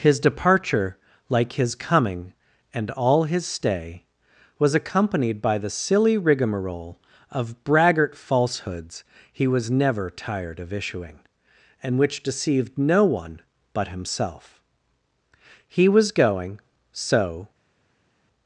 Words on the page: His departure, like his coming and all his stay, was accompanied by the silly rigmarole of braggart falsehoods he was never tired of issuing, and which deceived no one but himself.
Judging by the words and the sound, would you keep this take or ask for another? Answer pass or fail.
fail